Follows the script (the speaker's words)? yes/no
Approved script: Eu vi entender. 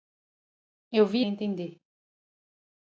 yes